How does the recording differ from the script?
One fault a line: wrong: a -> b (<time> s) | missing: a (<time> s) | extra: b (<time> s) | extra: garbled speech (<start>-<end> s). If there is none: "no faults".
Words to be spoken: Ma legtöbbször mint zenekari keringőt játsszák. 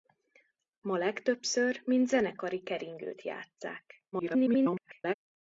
extra: garbled speech (4.1-5.1 s)